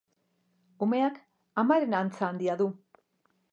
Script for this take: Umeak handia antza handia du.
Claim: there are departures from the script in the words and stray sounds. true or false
true